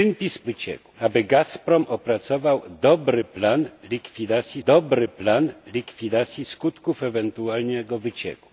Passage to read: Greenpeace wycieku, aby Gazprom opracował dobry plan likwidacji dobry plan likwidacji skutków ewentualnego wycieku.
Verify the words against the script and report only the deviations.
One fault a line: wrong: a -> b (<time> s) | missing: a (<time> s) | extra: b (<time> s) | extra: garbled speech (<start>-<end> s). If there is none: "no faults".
no faults